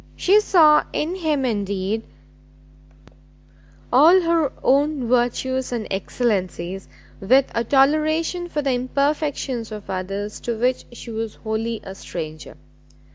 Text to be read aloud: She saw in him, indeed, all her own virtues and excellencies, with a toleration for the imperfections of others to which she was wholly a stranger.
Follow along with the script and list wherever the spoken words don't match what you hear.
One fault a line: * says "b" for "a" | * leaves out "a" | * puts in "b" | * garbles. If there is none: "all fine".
all fine